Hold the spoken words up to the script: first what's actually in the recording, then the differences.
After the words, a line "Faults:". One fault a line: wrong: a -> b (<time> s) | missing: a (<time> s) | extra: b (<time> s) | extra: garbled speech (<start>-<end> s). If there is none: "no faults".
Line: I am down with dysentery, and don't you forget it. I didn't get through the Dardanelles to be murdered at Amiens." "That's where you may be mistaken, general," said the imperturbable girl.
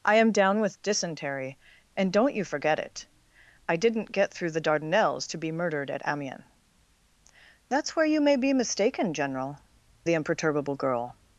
I am down with dysentery, and don't you forget it. I didn't get through the Dardanelles to be murdered at Amiens." "That's where you may be mistaken, general," the imperturbable girl.
Faults:
missing: said (9.6 s)